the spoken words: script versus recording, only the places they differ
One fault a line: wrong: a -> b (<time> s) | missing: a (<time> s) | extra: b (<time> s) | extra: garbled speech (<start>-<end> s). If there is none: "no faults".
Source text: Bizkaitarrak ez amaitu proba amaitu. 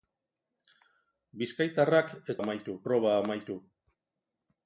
no faults